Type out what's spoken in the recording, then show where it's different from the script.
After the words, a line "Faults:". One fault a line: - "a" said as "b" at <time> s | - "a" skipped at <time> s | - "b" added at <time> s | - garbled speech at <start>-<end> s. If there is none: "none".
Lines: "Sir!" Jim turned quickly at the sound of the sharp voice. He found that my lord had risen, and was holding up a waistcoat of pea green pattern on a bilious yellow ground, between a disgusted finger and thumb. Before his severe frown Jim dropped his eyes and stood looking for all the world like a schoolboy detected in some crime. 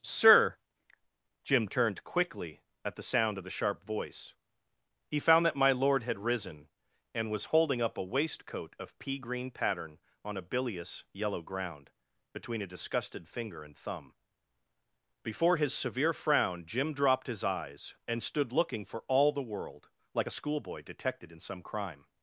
"Sir!" Jim turned quickly at the sound of the sharp voice. He found that my lord had risen, and was holding up a waistcoat of pea green pattern on a bilious yellow ground, between a disgusted finger and thumb. Before his severe frown Jim dropped his eyes and stood looking for all the world like a schoolboy detected in some crime.
Faults:
none